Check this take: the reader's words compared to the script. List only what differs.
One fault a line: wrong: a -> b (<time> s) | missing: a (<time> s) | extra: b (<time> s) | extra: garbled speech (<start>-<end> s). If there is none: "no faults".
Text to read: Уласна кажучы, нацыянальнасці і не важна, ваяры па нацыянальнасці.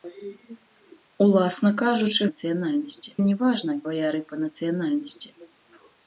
no faults